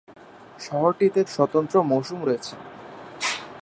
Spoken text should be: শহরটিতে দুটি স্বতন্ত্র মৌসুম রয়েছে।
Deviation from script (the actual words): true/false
true